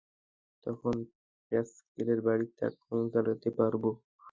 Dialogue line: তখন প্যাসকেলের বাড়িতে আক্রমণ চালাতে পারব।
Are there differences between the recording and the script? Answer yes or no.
no